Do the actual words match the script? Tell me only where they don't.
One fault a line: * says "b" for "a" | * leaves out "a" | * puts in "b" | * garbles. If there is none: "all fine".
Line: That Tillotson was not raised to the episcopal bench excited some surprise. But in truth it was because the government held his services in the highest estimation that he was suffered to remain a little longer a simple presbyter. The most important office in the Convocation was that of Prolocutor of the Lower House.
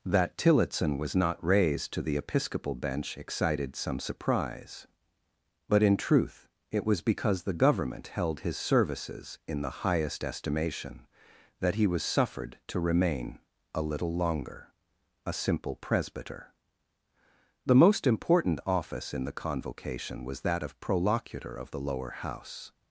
all fine